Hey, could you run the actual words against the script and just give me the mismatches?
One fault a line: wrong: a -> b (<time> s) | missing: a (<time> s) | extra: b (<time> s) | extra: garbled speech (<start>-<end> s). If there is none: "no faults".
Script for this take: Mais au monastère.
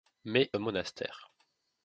no faults